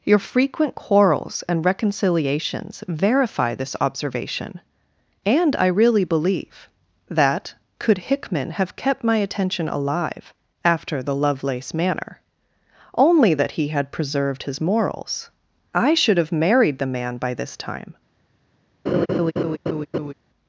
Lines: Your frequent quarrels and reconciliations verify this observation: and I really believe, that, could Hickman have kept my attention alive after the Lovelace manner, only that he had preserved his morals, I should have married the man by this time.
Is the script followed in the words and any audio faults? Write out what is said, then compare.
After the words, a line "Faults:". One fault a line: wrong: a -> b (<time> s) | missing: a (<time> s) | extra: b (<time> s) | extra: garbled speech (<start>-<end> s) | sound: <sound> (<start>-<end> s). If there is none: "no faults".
Your frequent quarrels and reconciliations verify this observation: and I really believe, that, could Hickman have kept my attention alive after the Lovelace manner, only that he had preserved his morals, I should have married the man by this time.
Faults:
sound: laugh (18.9-20.1 s)